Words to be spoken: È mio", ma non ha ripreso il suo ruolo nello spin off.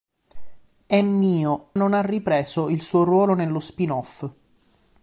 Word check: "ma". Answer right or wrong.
wrong